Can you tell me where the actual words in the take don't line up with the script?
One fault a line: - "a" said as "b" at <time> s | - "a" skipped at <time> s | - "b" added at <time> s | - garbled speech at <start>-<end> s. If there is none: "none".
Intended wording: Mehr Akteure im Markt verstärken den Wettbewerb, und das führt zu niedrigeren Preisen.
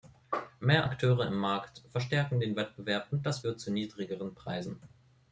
none